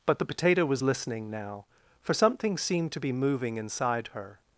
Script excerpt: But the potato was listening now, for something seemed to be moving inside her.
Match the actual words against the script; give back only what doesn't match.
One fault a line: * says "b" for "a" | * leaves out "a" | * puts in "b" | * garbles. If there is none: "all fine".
all fine